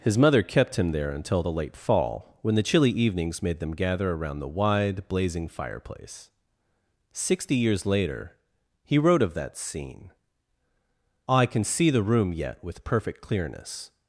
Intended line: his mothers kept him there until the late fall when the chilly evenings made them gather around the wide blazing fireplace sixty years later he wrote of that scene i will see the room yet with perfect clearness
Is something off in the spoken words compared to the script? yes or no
yes